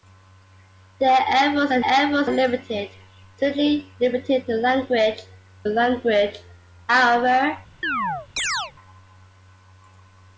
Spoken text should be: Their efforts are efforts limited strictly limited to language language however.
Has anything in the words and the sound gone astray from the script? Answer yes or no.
yes